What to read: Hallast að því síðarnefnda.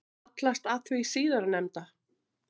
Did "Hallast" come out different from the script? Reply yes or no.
no